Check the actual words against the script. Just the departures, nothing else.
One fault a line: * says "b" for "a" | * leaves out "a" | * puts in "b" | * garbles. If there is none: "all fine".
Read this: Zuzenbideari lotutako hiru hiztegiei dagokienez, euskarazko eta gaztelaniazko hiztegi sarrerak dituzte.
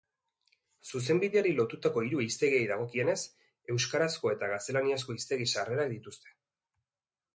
all fine